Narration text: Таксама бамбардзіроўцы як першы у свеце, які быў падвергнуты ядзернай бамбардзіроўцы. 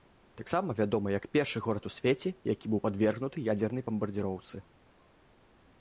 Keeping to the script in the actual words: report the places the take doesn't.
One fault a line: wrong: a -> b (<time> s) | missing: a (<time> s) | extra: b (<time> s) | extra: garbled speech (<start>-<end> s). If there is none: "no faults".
wrong: бамбардзіроўцы -> вядомы (0.8 s)
extra: горад (1.7 s)